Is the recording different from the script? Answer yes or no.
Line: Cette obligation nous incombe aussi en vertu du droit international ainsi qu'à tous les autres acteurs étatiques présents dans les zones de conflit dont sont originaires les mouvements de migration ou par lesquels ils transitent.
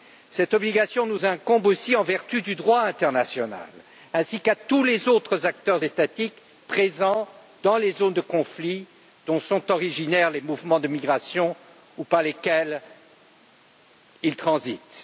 no